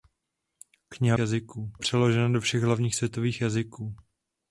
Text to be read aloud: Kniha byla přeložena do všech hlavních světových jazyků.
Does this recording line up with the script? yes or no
no